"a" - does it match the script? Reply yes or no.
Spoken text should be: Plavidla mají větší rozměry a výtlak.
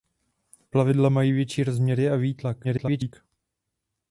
yes